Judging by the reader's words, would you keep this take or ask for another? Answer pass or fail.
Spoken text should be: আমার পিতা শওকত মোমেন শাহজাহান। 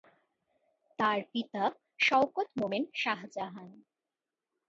fail